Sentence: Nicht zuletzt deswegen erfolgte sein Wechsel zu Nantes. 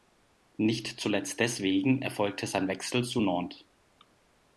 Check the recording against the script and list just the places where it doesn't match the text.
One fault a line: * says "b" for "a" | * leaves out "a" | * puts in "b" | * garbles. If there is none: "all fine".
all fine